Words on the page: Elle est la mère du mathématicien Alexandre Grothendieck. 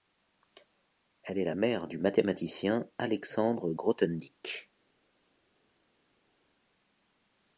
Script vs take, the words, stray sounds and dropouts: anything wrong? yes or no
no